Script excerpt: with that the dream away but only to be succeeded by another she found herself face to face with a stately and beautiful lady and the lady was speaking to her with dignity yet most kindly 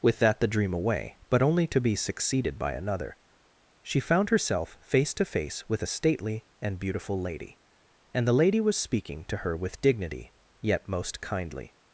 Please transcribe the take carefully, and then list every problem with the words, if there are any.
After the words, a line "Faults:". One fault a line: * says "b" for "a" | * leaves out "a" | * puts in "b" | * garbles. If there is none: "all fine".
with that the dream away but only to be succeeded by another she found herself face to face with a stately and beautiful lady and the lady was speaking to her with dignity yet most kindly
Faults:
all fine